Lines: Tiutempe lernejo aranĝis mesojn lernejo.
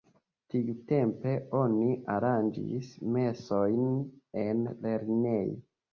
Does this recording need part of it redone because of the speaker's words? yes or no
yes